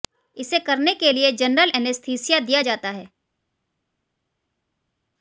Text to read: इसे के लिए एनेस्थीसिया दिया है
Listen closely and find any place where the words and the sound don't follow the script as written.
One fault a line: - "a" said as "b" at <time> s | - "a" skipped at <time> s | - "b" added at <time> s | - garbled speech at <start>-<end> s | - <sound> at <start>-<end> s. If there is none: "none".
- "करने" added at 0.6 s
- "जनरल" added at 1.3 s
- "जाता" added at 2.6 s